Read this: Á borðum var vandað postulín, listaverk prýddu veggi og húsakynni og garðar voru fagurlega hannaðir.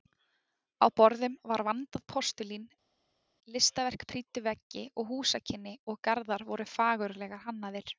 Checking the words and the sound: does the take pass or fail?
pass